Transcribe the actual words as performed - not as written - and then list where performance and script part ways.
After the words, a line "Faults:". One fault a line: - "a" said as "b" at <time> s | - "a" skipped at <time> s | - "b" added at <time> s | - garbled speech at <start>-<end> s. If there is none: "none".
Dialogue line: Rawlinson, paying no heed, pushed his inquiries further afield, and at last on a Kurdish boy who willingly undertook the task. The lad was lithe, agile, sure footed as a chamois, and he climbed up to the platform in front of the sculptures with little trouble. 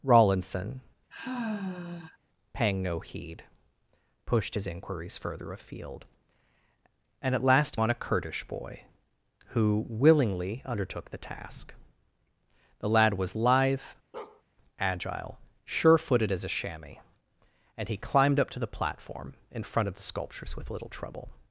Rawlinson, paying no heed, pushed his inquiries further afield, and at last on a Kurdish boy who willingly undertook the task. The lad was lithe, agile, sure footed as a chamois, and he climbed up to the platform in front of the sculptures with little trouble.
Faults:
none